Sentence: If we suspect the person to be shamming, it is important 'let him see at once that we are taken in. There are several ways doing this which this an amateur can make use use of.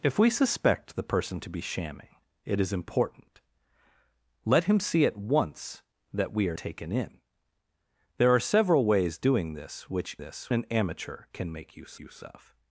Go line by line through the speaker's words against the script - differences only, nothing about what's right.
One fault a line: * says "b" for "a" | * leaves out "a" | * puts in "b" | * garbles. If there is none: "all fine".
all fine